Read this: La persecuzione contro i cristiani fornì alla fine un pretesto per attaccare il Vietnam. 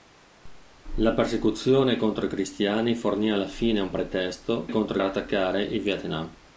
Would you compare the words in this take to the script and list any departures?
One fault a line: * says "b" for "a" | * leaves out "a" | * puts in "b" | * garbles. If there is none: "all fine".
* says "contro" for "per"